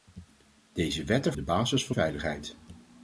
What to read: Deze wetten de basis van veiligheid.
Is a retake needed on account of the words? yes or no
no